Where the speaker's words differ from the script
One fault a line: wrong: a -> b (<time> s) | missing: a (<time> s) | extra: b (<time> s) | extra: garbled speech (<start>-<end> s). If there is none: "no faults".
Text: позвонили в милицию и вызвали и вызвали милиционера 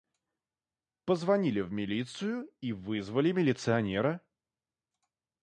missing: и вызвали (3.3 s)